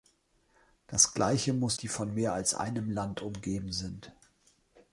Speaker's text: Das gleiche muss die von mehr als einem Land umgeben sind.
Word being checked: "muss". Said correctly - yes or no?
yes